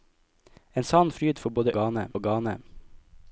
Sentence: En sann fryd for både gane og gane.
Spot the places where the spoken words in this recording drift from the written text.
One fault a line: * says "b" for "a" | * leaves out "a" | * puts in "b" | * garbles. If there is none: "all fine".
all fine